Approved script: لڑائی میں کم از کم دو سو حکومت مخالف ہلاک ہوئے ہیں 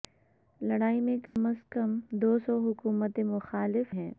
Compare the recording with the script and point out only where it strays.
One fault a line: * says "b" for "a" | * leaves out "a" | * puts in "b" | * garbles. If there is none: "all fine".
* leaves out "ہلاک ہوئے"